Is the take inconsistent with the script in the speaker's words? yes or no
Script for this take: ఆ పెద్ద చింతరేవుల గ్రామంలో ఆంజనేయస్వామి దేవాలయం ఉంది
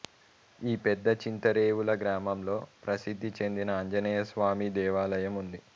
yes